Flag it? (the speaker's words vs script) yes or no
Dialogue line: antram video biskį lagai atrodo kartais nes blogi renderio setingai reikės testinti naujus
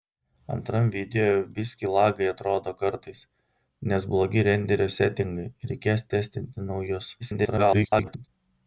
yes